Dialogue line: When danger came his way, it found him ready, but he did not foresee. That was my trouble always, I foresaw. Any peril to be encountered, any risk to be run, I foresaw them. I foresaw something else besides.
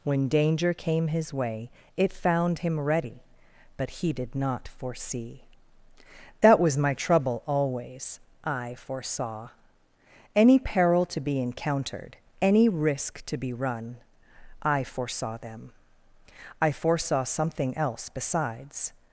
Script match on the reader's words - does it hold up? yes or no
yes